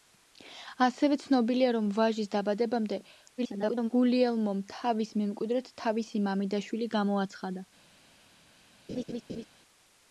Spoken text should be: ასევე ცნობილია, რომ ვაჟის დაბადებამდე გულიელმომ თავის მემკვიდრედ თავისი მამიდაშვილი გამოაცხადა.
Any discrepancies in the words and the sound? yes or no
yes